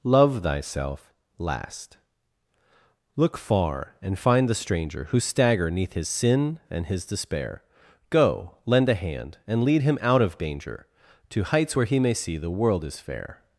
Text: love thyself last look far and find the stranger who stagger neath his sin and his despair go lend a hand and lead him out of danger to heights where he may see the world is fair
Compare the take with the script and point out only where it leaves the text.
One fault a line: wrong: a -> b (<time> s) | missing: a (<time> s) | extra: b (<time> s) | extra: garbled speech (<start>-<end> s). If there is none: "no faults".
no faults